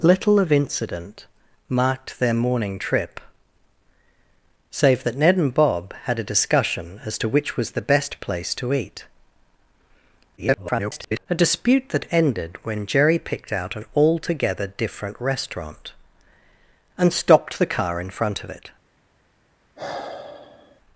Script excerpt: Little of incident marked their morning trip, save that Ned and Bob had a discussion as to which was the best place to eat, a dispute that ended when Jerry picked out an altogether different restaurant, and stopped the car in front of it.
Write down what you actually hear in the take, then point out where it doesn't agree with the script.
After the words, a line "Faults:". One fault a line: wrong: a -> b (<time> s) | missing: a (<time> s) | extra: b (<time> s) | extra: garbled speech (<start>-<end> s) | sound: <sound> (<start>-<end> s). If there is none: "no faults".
Little of incident marked their morning trip, save that Ned and Bob had a discussion as to which was the best place to eat, [garbled] a dispute that ended when Jerry picked out an altogether different restaurant, and stopped the car in front of it.
Faults:
extra: garbled speech (10.4-11.3 s)
sound: sigh (19.8-20.8 s)